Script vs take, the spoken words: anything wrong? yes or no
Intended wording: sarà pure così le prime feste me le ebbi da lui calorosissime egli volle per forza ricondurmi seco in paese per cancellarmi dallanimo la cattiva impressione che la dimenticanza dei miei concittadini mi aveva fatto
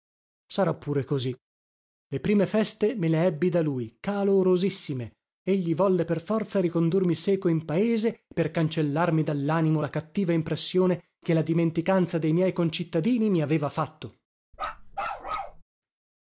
no